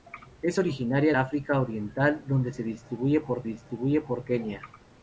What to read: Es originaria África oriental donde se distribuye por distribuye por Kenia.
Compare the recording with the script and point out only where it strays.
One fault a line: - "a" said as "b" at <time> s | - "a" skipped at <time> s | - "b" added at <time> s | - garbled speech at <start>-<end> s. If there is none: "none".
none